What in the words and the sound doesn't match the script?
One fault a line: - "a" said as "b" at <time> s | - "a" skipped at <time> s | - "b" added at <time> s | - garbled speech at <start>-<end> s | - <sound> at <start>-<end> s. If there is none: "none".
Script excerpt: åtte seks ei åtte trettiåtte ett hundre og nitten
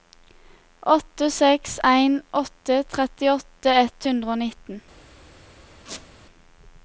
- "ei" said as "en" at 1.8 s
- squeak at 5.9-6.1 s